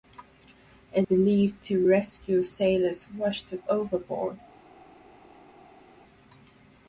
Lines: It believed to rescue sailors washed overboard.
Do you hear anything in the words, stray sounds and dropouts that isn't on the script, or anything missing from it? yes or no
no